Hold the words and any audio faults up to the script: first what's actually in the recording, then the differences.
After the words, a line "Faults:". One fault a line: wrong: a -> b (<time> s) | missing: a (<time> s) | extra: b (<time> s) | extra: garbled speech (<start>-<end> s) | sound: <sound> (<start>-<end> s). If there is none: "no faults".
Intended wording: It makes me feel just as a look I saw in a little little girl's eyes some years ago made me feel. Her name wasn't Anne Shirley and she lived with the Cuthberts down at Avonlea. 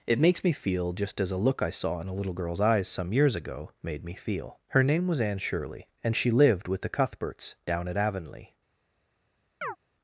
It makes me feel just as a look I saw in a little girl's eyes some years ago made me feel. Her name was Anne Shirley and she lived with the Cuthberts down at Avonlea.
Faults:
missing: little (2.3 s)
wrong: wasn't -> was (5.1 s)
sound: chirp (9.6-9.8 s)